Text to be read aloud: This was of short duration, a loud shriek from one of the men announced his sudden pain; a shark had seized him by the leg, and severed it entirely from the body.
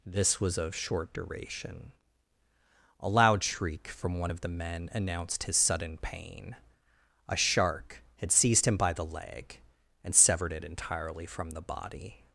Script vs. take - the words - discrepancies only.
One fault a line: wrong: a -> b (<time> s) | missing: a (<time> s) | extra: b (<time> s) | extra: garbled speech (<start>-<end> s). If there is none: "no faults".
no faults